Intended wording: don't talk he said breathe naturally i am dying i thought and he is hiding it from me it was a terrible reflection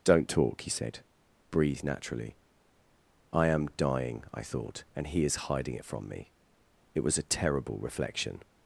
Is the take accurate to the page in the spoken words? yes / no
yes